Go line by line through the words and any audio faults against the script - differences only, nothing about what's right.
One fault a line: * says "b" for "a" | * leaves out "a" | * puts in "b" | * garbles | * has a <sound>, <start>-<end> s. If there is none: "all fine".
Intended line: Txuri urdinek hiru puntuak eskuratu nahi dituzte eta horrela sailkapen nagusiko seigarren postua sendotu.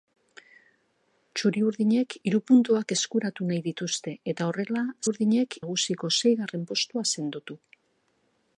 * says "urdinek" for "sailkapen"